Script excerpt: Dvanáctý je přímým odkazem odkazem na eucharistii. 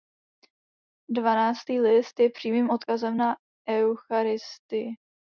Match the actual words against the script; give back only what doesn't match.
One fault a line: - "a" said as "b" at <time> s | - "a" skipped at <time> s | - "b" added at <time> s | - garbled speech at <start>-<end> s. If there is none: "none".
- "list" added at 1.8 s
- "odkazem" skipped at 3.2 s